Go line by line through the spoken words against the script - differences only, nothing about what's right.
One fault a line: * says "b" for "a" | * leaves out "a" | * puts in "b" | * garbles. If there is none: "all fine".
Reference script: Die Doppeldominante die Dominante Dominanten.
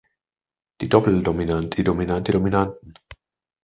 all fine